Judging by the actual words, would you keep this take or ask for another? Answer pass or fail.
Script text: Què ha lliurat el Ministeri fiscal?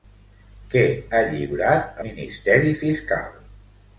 fail